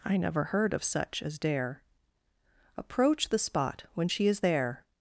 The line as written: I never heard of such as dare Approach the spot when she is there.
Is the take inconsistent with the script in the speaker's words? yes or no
no